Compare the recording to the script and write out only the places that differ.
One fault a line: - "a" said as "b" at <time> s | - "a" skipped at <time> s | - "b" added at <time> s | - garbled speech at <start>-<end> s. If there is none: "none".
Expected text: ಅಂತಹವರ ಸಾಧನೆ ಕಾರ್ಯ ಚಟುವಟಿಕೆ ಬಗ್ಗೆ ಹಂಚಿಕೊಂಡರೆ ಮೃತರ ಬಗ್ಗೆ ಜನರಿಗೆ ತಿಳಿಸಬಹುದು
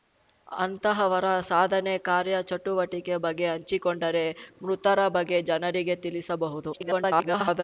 - garbled speech at 6.7-7.6 s